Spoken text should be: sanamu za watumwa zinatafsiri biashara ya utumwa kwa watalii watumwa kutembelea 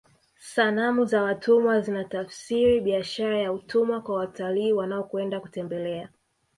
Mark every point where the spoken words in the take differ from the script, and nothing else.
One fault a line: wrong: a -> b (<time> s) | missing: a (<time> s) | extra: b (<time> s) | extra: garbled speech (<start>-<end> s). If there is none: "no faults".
wrong: watumwa -> wanaokwenda (4.7 s)